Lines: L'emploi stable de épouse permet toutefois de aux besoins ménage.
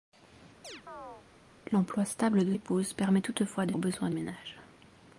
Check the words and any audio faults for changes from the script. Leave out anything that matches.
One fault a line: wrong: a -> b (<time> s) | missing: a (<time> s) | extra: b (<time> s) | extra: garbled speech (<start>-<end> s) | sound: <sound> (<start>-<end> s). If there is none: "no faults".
sound: chirp (0.6-1.3 s)